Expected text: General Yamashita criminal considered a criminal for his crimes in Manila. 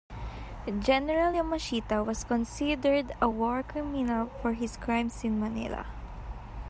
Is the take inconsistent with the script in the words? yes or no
yes